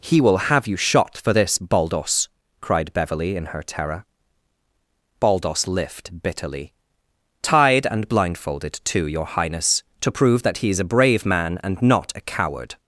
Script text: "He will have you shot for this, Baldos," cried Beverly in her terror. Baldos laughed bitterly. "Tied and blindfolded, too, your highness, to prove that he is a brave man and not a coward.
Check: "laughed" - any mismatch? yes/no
yes